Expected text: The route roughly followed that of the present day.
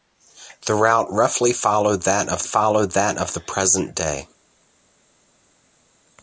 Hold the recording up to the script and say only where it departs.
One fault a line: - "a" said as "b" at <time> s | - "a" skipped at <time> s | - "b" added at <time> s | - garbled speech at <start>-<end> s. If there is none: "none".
- "followed that of" added at 2.4 s